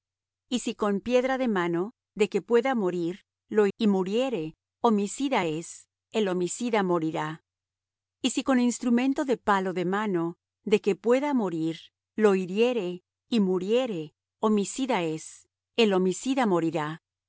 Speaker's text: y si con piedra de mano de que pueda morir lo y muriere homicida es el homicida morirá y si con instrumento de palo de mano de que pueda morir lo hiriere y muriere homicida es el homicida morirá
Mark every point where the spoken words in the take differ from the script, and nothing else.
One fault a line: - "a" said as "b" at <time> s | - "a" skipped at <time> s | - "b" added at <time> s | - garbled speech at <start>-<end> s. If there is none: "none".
none